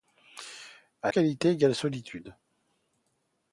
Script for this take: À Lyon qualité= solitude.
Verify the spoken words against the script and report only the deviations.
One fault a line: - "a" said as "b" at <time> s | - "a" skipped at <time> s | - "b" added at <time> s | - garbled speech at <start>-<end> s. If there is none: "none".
- "Lyon" skipped at 1.1 s